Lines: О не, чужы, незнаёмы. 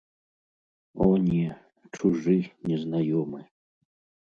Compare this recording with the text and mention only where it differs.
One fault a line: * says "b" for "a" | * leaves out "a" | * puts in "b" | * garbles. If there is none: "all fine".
all fine